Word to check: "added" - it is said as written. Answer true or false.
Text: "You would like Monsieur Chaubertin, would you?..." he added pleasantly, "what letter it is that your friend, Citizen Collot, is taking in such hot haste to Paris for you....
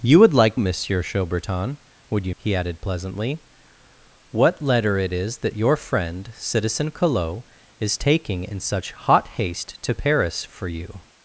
true